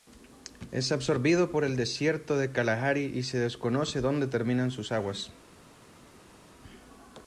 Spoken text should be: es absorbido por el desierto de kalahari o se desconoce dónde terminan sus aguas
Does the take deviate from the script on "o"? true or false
true